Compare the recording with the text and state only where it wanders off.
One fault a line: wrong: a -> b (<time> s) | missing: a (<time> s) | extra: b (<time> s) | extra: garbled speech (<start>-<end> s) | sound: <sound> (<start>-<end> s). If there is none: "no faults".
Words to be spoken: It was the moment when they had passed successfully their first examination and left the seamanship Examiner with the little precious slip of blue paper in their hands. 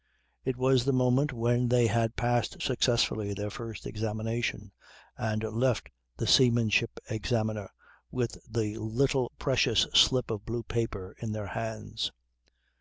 no faults